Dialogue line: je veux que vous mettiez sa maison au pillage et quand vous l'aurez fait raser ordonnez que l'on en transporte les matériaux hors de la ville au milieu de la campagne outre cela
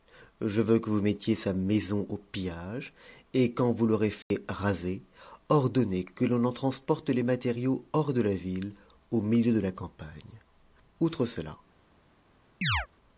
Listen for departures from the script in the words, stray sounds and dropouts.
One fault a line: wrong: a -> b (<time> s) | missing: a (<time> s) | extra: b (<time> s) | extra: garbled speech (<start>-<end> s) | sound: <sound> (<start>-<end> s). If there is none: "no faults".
sound: dropout (4.2-4.3 s)
sound: chirp (12.6-12.9 s)